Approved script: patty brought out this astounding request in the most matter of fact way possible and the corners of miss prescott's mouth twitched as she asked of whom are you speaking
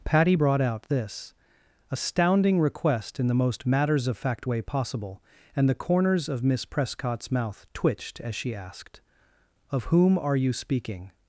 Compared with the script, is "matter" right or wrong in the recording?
wrong